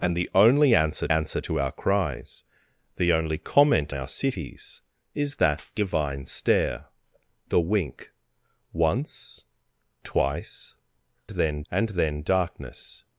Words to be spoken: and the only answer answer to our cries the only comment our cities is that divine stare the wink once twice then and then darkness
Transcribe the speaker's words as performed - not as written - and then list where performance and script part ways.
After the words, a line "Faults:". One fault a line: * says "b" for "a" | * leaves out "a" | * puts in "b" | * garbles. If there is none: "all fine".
and the only answer answer to our cries the only comment our cities is that divine stare the wink once twice then and then darkness
Faults:
all fine